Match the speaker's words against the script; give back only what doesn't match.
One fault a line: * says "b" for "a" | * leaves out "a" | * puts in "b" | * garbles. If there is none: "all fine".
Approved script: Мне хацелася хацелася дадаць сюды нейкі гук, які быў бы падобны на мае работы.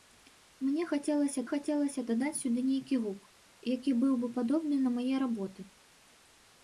all fine